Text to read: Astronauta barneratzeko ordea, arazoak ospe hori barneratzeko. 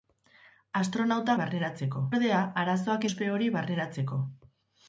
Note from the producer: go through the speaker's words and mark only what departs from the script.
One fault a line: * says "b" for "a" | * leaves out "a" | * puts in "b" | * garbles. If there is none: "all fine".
all fine